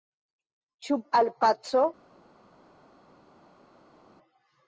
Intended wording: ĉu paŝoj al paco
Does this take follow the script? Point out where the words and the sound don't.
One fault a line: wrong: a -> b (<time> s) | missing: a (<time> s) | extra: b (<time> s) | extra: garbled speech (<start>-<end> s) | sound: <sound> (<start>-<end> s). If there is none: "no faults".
missing: paŝoj (1.0 s)